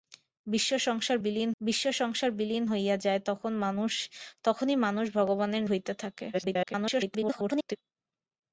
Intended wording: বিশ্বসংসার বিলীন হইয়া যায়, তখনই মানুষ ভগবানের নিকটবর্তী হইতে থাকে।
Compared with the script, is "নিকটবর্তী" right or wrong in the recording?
wrong